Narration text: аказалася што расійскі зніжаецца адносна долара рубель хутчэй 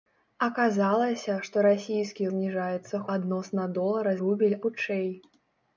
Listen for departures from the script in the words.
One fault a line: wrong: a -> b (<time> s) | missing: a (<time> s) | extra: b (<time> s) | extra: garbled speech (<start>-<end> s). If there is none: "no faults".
no faults